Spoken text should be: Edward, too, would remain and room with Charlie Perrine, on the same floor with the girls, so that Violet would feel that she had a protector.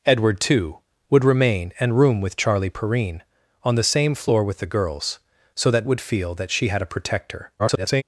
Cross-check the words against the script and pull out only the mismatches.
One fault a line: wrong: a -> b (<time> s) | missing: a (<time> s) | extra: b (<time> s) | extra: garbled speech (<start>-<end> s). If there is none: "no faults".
missing: Violet (5.9 s)
extra: garbled speech (7.6-8.0 s)